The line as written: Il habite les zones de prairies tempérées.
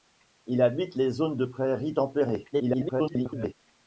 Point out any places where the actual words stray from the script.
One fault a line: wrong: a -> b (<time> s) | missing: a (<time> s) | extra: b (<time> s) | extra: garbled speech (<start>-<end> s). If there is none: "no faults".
extra: garbled speech (2.5-3.5 s)